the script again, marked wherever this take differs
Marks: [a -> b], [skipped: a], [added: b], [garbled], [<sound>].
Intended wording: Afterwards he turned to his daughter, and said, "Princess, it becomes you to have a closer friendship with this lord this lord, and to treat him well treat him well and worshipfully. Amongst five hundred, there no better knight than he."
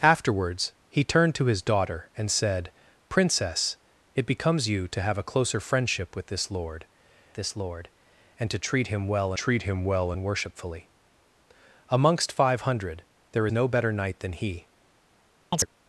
Afterwards he turned to his daughter, and said, "Princess, it becomes you to have a closer friendship with this lord this lord, and to treat him well treat him well and worshipfully. Amongst five hundred, there no better knight than he." [chirp]